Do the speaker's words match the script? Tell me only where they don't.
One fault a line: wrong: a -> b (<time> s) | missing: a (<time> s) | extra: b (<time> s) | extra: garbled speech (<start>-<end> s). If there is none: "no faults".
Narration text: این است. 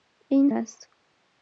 no faults